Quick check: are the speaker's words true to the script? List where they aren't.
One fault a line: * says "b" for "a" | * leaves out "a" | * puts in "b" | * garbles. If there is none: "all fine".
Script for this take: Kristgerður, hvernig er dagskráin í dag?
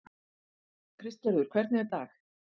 * leaves out "dagskráin"